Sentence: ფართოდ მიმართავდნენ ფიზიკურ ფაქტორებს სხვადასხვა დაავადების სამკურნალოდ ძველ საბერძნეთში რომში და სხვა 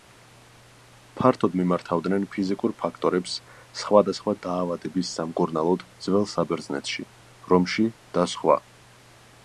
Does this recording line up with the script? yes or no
yes